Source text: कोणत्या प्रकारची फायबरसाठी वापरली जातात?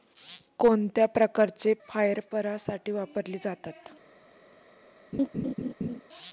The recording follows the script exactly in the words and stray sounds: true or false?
false